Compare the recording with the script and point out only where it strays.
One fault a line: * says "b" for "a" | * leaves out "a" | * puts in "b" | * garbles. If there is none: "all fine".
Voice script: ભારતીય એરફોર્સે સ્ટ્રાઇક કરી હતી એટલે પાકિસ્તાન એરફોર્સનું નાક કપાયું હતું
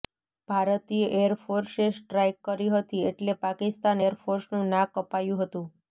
all fine